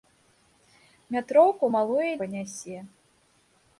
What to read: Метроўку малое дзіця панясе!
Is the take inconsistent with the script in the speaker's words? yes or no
yes